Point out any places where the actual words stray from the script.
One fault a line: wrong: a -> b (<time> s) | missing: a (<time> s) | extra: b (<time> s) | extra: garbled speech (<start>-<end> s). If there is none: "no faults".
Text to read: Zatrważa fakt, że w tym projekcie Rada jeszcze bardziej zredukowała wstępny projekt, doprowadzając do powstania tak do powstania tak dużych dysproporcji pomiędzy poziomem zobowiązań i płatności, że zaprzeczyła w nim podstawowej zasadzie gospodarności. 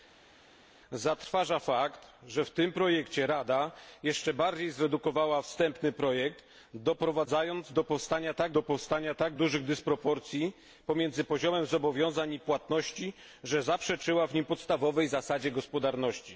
no faults